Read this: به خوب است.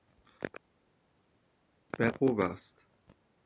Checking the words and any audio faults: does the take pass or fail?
pass